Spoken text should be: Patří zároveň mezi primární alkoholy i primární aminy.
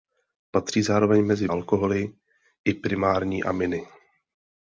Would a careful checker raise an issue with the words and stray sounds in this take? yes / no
yes